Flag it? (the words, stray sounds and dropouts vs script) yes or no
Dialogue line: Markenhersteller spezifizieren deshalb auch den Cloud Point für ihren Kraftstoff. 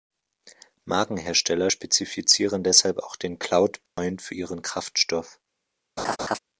yes